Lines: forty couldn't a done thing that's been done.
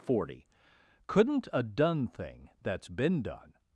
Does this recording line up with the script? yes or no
yes